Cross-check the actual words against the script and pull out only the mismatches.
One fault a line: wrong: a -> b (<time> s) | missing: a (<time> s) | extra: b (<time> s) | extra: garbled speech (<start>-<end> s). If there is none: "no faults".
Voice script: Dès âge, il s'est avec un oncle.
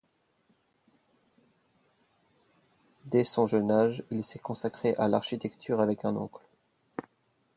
extra: son jeune (3.2 s)
extra: consacré à l'architecture (4.4 s)